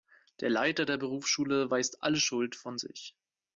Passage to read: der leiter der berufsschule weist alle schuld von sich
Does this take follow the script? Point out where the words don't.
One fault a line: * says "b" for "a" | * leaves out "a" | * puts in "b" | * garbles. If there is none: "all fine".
all fine